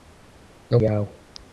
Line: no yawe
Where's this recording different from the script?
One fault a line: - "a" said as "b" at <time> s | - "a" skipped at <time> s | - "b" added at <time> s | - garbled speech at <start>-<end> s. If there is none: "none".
none